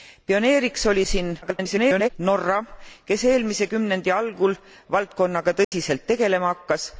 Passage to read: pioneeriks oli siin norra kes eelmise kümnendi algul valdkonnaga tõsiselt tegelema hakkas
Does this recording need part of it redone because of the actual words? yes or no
yes